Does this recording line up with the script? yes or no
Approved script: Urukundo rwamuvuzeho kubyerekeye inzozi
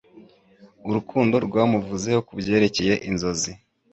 yes